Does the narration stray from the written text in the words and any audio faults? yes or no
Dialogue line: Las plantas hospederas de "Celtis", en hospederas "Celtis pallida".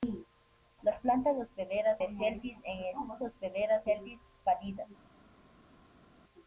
no